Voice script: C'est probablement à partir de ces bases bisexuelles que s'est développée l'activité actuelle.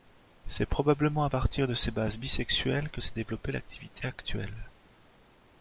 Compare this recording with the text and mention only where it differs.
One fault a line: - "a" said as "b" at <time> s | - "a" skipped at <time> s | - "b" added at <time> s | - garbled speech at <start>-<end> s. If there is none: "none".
none